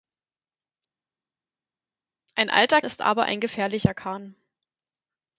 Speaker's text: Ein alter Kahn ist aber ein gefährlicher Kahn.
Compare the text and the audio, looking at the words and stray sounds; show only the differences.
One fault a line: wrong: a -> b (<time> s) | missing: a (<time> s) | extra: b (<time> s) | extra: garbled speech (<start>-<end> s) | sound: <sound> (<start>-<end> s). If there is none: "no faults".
missing: Kahn (2.8 s)